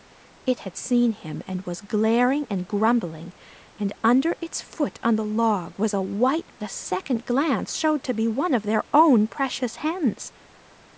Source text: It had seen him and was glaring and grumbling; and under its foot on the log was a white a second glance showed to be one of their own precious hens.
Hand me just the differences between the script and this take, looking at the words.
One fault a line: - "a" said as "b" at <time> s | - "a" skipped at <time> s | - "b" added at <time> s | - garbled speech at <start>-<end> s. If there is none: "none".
none